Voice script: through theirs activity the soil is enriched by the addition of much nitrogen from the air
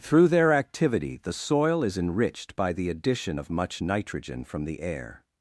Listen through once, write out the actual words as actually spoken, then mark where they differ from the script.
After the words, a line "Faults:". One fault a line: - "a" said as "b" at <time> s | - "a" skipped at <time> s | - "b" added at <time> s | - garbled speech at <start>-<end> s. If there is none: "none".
through their activity the soil is enriched by the addition of much nitrogen from the air
Faults:
- "theirs" said as "their" at 0.3 s